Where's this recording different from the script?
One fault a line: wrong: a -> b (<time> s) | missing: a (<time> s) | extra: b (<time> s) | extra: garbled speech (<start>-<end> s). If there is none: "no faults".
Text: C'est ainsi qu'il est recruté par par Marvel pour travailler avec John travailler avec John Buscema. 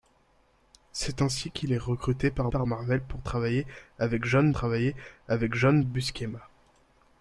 no faults